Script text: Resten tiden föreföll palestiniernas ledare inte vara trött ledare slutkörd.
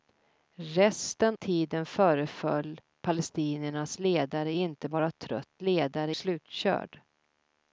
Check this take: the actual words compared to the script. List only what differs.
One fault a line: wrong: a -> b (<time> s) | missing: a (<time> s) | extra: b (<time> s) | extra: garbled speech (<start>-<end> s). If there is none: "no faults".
no faults